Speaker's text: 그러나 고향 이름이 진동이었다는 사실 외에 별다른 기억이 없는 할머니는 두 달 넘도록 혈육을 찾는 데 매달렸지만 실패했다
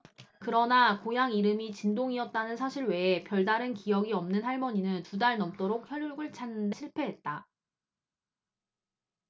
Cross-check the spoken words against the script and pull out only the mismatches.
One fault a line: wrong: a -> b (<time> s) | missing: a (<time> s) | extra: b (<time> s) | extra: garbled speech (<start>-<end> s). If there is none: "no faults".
missing: 데 매달렸지만 (6.7 s)